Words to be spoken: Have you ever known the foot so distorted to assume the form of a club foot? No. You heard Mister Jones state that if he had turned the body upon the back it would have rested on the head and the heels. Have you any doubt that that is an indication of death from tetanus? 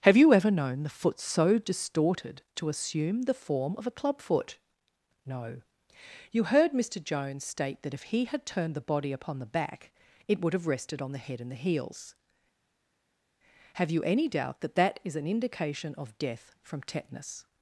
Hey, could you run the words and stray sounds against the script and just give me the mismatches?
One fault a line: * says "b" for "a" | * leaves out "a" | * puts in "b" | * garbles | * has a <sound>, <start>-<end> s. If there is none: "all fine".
all fine